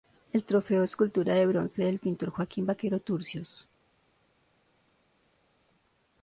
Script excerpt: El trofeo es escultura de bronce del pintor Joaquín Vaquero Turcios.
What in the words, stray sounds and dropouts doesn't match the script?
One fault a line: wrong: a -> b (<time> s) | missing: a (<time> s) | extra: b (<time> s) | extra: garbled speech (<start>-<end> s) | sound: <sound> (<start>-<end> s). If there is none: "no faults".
no faults